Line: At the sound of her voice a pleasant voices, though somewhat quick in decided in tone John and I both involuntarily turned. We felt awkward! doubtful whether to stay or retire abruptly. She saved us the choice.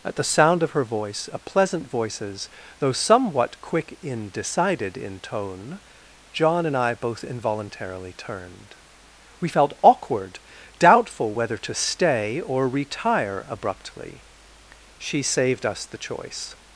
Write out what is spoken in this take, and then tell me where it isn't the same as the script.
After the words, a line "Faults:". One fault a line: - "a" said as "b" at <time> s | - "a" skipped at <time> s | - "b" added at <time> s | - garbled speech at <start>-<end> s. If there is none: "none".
At the sound of her voice a pleasant voices, though somewhat quick in decided in tone John and I both involuntarily turned. We felt awkward! doubtful whether to stay or retire abruptly. She saved us the choice.
Faults:
none